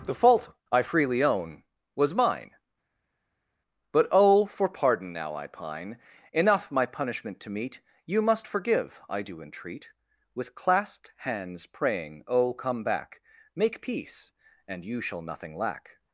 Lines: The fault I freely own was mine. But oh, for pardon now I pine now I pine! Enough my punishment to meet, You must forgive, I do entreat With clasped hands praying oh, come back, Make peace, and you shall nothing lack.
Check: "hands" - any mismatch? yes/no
no